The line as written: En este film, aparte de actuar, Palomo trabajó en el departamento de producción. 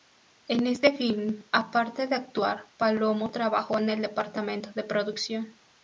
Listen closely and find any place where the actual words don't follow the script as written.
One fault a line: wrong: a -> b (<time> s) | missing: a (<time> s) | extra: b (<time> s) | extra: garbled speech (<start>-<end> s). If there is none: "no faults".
no faults